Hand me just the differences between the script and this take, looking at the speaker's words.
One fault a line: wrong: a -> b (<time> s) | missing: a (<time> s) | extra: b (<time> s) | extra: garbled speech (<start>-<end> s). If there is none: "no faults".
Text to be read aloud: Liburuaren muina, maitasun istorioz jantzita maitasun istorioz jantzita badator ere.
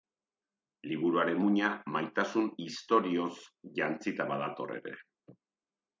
missing: maitasun istorioz jantzita (4.3 s)